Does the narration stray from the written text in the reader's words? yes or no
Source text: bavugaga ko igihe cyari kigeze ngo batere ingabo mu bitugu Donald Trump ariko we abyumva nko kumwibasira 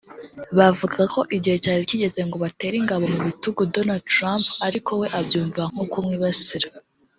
no